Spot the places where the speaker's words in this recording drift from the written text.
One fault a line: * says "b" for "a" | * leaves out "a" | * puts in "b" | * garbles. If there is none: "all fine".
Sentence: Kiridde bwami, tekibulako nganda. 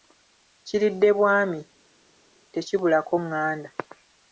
all fine